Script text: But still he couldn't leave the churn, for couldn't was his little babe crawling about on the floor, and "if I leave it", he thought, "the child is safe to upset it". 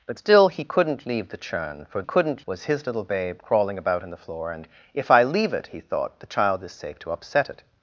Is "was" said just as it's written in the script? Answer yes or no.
yes